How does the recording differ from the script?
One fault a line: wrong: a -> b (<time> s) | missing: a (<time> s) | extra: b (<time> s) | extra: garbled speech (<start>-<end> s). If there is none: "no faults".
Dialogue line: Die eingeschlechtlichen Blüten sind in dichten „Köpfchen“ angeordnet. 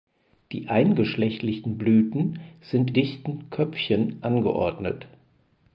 missing: in (3.0 s)